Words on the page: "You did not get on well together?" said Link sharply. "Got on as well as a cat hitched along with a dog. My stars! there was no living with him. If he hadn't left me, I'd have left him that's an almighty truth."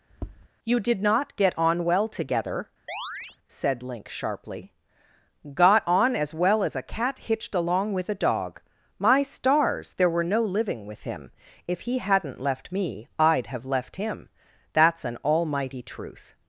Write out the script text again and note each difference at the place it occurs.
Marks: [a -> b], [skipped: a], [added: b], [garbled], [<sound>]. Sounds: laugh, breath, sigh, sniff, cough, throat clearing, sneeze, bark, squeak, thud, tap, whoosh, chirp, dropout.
[tap] "You did not get on well together?" [chirp] said Link sharply. "Got on as well as a cat hitched along with a dog. My stars! there [was -> were] no living with him. If he hadn't left me, I'd have left him that's an almighty truth."